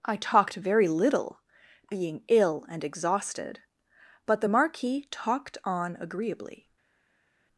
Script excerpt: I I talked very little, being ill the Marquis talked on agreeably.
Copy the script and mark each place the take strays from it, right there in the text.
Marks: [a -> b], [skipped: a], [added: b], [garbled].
I [skipped: I] talked very little, being ill [added: and exhausted but] the Marquis talked on agreeably.